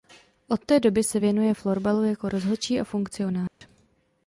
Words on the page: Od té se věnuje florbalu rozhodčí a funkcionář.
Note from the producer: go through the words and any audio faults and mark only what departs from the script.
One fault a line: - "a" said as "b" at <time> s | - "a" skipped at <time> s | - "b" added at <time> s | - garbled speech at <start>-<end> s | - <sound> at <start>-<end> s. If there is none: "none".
- "doby" added at 0.8 s
- "jako" added at 2.0 s
- dropout at 3.5-3.6 s